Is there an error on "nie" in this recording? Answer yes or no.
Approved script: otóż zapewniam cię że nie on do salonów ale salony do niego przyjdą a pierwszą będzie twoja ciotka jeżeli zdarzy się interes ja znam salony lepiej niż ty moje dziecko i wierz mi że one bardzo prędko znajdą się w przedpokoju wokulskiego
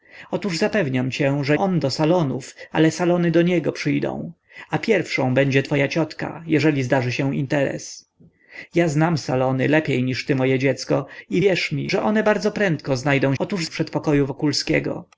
yes